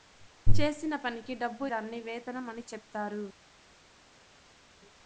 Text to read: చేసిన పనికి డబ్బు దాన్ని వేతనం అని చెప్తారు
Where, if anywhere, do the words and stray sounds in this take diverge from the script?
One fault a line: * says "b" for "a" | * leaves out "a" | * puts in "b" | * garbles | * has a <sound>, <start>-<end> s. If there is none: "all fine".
all fine